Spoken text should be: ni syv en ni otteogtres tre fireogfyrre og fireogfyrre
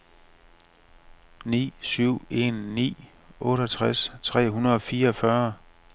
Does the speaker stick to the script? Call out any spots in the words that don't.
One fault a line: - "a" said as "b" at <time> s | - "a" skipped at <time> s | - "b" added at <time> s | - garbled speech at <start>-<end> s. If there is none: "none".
- "fireogfyrre" said as "hundrede" at 4.5 s